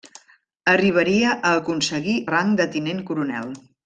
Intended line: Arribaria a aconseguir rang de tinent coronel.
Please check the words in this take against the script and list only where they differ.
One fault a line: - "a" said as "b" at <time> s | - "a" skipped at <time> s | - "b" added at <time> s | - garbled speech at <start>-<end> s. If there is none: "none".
none